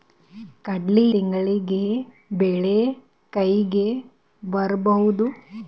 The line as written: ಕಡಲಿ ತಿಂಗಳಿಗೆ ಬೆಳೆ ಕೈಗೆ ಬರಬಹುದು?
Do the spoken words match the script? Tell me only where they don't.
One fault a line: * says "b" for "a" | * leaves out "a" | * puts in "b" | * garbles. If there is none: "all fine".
all fine